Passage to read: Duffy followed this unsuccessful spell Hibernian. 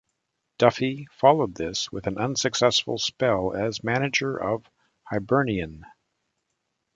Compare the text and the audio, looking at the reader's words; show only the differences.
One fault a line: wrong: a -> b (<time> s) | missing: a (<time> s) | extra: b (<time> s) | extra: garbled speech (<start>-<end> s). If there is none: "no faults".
extra: with an (1.9 s)
extra: as manager of (3.5 s)